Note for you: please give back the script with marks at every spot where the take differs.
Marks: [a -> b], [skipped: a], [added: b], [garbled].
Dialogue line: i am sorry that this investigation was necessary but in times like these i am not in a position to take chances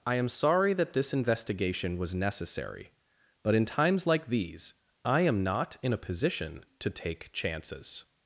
i am sorry that this investigation was necessary but in times like these i am not in a position to take chances